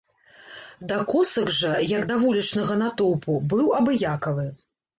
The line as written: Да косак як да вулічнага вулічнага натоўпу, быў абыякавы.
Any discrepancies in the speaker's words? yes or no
yes